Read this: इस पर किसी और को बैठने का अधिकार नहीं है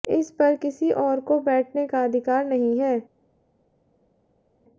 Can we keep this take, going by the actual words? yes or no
yes